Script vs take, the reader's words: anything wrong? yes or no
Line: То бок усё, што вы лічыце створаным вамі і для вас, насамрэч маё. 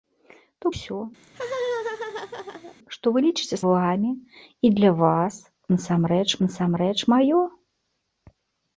yes